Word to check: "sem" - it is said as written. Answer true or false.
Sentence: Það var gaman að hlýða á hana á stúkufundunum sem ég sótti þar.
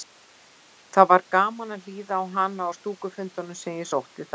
true